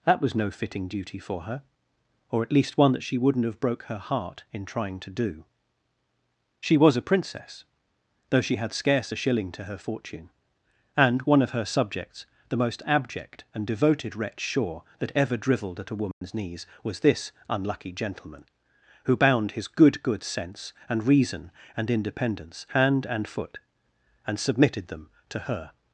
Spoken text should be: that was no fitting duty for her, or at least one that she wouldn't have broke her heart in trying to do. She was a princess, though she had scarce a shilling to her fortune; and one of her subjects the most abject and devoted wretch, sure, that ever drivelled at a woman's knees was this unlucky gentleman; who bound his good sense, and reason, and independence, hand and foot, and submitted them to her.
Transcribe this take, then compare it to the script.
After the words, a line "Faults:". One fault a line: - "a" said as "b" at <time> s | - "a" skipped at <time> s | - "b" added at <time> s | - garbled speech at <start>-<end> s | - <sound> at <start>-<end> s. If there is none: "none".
that was no fitting duty for her, or at least one that she wouldn't have broke her heart in trying to do. She was a princess, though she had scarce a shilling to her fortune; and one of her subjects the most abject and devoted wretch, sure, that ever drivelled at a woman's knees was this unlucky gentleman; who bound his good good sense, and reason, and independence, hand and foot, and submitted them to her.
Faults:
- dropout at 16.1-16.2 s
- "good" added at 20.0 s